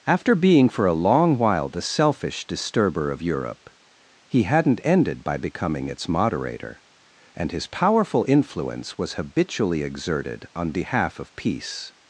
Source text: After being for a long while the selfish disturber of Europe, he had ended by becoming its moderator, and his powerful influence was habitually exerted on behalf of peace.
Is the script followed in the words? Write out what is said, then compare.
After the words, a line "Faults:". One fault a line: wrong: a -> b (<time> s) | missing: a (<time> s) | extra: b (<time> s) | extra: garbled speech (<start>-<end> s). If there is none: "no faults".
After being for a long while the selfish disturber of Europe, he hadn't ended by becoming its moderator, and his powerful influence was habitually exerted on behalf of peace.
Faults:
wrong: had -> hadn't (4.4 s)